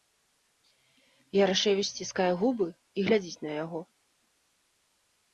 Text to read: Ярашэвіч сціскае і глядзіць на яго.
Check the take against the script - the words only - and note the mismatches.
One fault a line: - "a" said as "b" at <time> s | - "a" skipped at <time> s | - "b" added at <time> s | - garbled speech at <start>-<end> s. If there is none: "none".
- "губы" added at 2.4 s